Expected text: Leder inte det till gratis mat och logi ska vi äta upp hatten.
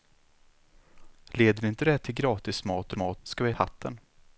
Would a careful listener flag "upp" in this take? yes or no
yes